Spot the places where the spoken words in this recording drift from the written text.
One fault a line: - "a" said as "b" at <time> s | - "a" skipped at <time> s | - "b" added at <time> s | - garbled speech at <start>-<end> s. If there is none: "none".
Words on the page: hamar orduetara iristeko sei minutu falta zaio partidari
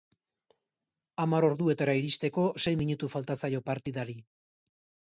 none